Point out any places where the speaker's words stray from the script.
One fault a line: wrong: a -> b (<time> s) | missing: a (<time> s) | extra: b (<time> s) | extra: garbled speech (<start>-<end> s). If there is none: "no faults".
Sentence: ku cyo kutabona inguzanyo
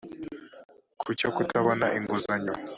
no faults